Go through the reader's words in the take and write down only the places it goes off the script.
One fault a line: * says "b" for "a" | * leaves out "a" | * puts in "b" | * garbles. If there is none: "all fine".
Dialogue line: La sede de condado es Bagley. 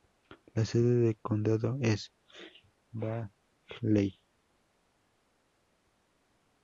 all fine